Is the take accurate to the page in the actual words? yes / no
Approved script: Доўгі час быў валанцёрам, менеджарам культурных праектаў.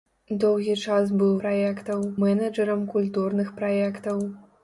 no